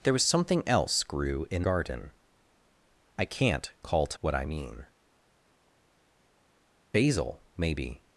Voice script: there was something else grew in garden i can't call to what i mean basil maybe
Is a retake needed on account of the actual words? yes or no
no